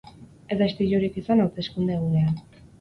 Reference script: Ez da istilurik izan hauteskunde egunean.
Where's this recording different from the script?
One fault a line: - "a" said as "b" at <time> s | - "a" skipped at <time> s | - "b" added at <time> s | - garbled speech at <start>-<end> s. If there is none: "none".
none